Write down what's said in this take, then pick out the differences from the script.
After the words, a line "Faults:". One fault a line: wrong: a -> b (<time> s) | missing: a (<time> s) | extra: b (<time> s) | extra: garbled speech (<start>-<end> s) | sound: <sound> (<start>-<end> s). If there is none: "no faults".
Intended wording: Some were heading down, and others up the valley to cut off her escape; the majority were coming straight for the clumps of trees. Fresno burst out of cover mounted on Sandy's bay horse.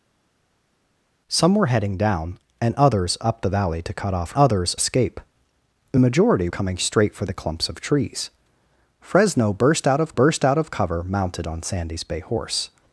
Some were heading down, and others up the valley to cut off others escape; the majority coming straight for the clumps of trees. Fresno burst out of burst out of cover mounted on Sandy's bay horse.
Faults:
wrong: her -> others (4.3 s)
missing: were (6.5 s)
extra: burst out of (10.1 s)